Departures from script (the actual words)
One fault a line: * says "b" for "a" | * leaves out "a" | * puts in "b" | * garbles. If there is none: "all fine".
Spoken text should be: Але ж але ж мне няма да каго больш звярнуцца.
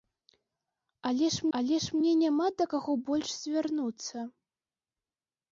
all fine